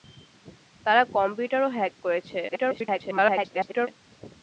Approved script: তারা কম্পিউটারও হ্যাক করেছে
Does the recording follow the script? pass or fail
fail